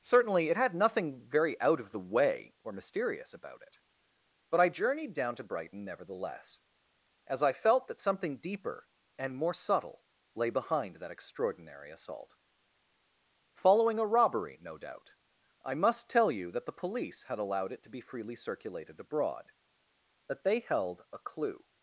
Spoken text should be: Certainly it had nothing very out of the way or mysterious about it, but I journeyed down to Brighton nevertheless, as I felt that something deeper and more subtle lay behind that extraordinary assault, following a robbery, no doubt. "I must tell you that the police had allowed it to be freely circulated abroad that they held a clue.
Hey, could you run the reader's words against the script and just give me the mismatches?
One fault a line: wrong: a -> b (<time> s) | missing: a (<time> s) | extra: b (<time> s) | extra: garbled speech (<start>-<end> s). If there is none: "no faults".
no faults